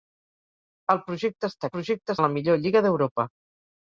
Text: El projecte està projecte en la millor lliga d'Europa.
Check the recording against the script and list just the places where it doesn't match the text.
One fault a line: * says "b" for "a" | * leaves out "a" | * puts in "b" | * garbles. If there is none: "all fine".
all fine